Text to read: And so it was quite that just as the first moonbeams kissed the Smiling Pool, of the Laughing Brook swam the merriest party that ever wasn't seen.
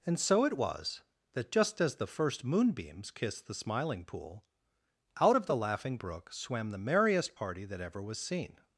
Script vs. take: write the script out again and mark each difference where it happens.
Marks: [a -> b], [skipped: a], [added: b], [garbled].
And so it was [skipped: quite] that just as the first moonbeams kissed the Smiling Pool, [added: out] of the Laughing Brook swam the merriest party that ever [wasn't -> was] seen.